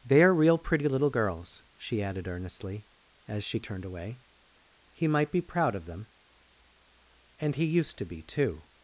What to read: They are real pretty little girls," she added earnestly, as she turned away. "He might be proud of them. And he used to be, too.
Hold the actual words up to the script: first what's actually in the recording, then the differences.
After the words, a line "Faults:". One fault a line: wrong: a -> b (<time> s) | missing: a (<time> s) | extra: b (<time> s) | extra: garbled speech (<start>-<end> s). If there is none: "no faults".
They are real pretty little girls," she added earnestly, as she turned away. "He might be proud of them. And he used to be, too.
Faults:
no faults